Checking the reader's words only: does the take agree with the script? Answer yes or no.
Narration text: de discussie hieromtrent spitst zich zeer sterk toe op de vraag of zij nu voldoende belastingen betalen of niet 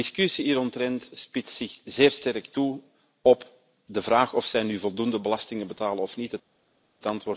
yes